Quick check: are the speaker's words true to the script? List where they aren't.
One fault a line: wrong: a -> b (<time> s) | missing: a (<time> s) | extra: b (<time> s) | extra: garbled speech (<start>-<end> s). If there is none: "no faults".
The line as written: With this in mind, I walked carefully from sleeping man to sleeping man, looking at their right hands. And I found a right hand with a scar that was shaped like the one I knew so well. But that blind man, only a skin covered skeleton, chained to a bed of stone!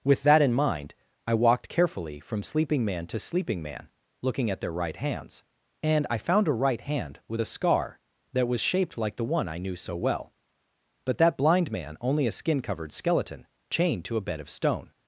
wrong: this -> that (0.2 s)